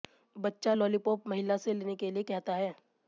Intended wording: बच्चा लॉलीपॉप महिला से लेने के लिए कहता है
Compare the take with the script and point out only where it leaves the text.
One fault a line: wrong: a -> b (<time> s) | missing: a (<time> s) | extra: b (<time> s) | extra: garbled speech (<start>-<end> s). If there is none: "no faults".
no faults